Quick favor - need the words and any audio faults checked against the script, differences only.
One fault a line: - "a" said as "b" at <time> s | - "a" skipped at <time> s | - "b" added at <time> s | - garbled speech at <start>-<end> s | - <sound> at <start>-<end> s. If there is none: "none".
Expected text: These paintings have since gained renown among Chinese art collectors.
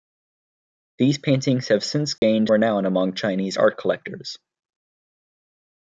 - dropout at 2.2-2.2 s